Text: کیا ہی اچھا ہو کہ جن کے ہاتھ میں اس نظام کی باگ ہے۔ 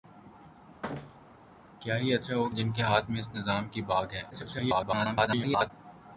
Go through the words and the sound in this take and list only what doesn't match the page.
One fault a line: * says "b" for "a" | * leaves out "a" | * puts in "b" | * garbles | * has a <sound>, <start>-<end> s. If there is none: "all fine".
* has a thud, 0.8-1.5 s
* leaves out "کہ"
* garbles